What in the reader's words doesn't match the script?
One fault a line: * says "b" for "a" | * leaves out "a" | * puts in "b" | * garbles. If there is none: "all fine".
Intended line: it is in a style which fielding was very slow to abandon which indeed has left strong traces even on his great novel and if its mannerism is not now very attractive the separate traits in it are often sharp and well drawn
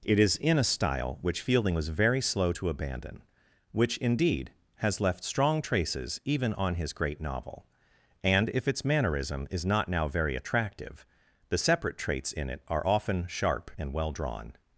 all fine